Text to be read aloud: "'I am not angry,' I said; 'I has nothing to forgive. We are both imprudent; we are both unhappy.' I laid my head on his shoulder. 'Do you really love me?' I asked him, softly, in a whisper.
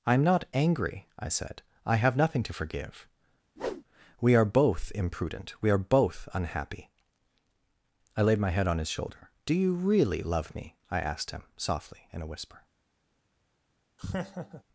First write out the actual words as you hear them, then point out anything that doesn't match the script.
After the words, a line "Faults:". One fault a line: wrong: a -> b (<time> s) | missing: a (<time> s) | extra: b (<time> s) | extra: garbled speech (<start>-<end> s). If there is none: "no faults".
"'I am not angry,' I said; 'I have nothing to forgive. We are both imprudent; we are both unhappy.' I laid my head on his shoulder. 'Do you really love me?' I asked him, softly, in a whisper.
Faults:
wrong: has -> have (2.0 s)